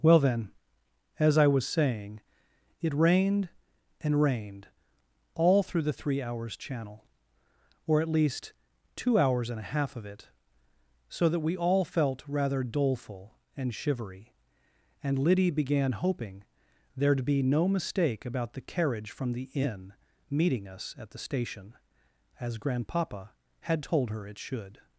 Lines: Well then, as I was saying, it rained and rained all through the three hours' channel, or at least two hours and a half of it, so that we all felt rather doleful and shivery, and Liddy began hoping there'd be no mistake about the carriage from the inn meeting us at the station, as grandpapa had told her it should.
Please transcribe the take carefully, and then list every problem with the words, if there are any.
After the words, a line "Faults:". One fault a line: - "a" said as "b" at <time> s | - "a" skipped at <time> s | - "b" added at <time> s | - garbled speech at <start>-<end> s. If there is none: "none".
Well then, as I was saying, it rained and rained all through the three hours' channel, or at least two hours and a half of it, so that we all felt rather doleful and shivery, and Liddy began hoping there'd be no mistake about the carriage from the inn meeting us at the station, as grandpapa had told her it should.
Faults:
none